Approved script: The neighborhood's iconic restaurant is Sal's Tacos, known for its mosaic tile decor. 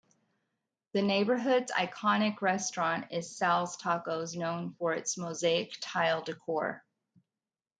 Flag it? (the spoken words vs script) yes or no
no